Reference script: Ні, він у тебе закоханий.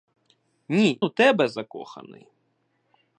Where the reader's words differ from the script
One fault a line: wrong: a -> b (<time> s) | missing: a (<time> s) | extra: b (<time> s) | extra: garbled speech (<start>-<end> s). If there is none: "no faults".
missing: він (1.0 s)